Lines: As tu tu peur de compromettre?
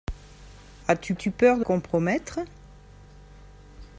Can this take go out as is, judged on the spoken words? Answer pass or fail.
pass